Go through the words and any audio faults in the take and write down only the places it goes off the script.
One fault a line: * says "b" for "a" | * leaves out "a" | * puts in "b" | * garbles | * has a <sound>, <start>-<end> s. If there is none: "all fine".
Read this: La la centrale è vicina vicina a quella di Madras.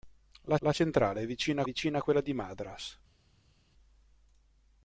all fine